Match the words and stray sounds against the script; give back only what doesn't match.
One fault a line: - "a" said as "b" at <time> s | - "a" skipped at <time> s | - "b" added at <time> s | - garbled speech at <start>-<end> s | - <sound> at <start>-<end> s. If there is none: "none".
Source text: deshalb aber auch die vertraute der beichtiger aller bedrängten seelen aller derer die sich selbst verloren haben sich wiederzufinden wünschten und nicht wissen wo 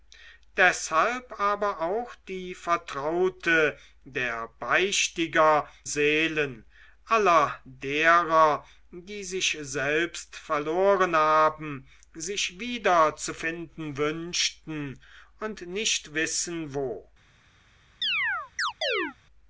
- "aller bedrängten" skipped at 5.7 s
- chirp at 18.0-19.2 s